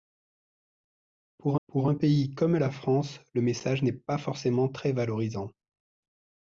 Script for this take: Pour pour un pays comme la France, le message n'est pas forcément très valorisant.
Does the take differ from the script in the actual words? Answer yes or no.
no